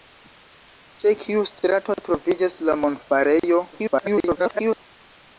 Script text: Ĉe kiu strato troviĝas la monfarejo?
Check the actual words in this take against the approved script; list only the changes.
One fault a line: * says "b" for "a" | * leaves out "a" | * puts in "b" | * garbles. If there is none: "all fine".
* garbles